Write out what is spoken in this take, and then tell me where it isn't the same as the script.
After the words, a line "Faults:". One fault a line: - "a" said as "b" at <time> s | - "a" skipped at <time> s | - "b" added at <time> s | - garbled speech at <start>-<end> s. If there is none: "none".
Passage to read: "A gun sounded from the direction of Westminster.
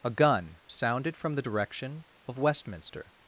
"A gun sounded from the direction of Westminster.
Faults:
none